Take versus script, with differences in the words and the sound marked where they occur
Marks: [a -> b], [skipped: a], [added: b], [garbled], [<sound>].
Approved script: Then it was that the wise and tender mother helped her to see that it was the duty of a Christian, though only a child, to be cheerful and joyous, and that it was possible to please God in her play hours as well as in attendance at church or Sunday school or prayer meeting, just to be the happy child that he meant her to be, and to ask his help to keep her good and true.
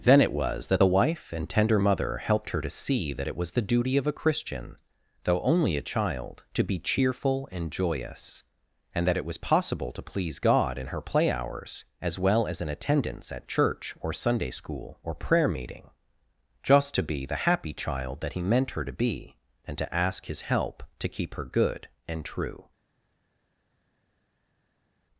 Then it was that the [wise -> wife] and tender mother helped her to see that it was the duty of a Christian, though only a child, to be cheerful and joyous, and that it was possible to please God in her play hours as well as in attendance at church or Sunday school or prayer meeting, just to be the happy child that he meant her to be, and to ask his help to keep her good and true.